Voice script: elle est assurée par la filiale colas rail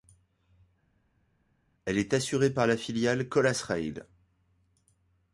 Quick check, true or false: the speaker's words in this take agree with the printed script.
true